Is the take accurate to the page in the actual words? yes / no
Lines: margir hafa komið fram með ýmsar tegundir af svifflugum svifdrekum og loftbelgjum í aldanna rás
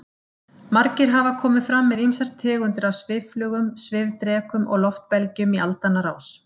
yes